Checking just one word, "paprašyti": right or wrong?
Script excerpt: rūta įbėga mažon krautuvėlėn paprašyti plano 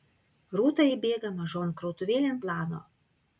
wrong